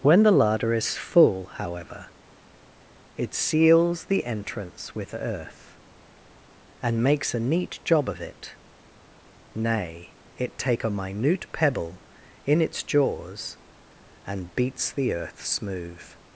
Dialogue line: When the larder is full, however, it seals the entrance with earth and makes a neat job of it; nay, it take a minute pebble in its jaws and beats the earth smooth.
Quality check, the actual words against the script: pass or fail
pass